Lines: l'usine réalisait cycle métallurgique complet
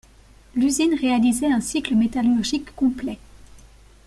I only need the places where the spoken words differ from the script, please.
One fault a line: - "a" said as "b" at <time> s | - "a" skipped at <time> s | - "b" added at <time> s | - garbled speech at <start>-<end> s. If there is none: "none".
- "un" added at 1.5 s